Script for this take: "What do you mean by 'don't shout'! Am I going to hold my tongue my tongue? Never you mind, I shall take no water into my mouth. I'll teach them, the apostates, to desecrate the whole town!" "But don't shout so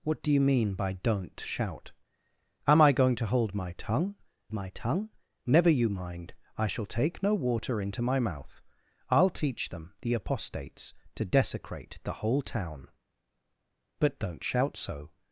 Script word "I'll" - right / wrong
right